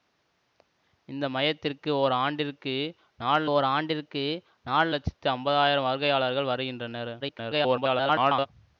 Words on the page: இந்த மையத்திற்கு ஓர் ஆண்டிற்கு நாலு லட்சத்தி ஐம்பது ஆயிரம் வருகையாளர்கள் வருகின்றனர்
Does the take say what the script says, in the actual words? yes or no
no